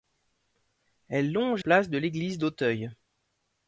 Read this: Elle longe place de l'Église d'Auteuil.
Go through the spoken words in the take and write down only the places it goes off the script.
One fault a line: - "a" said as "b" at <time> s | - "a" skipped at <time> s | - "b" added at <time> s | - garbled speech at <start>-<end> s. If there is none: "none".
none